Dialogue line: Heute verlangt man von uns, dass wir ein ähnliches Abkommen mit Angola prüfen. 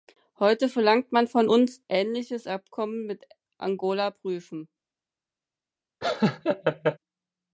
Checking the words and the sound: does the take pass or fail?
fail